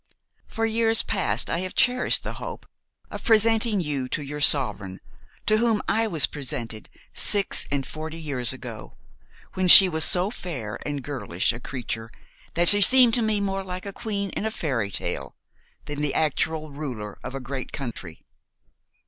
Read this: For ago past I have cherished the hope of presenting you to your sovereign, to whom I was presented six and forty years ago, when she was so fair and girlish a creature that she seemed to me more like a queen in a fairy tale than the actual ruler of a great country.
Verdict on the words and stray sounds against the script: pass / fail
fail